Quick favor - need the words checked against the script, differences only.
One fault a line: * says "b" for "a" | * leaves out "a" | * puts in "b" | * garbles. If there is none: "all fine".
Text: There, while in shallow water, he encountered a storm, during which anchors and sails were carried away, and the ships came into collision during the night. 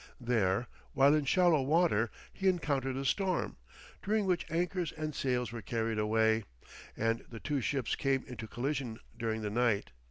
* puts in "two"